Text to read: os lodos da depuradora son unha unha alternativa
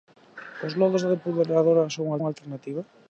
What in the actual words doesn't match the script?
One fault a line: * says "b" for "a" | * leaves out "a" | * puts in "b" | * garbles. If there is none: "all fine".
all fine